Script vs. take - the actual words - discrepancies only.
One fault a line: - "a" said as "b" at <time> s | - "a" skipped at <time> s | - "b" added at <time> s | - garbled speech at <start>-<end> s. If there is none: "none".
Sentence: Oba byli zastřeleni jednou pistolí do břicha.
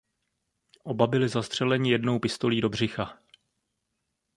none